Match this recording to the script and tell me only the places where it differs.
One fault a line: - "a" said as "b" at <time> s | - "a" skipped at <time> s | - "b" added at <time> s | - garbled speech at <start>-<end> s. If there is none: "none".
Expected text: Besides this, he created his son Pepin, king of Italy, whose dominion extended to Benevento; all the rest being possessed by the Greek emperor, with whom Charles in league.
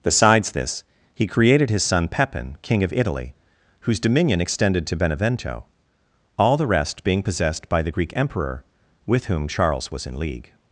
- "was" added at 9.9 s